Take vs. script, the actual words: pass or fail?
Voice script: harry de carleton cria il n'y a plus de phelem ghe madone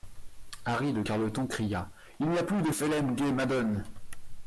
pass